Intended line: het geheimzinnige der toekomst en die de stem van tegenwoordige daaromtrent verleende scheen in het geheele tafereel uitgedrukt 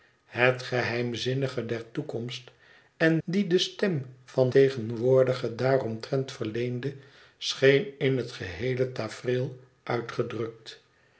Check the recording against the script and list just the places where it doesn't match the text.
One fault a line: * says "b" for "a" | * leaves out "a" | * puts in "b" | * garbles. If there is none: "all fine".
all fine